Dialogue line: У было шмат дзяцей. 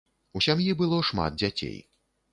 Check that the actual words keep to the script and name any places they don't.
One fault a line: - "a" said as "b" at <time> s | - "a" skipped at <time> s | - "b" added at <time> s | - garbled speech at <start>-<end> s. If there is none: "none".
- "сям'і" added at 0.4 s